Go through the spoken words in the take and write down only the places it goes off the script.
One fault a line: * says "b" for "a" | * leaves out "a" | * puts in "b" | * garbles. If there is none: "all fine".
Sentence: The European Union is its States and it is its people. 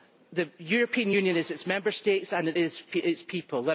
* puts in "Member"